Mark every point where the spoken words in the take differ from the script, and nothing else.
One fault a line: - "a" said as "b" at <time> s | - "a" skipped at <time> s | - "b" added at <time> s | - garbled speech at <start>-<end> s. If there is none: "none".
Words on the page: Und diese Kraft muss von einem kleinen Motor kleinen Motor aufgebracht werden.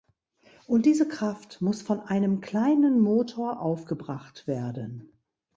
- "kleinen Motor" skipped at 3.6 s